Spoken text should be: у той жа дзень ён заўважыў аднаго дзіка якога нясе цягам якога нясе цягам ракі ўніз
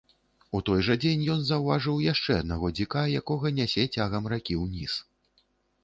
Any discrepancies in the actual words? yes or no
yes